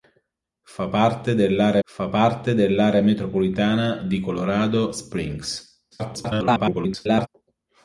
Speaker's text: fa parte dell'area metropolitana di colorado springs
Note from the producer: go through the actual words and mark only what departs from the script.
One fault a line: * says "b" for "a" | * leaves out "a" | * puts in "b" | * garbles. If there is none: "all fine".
* puts in "fa parte dell'area"
* garbles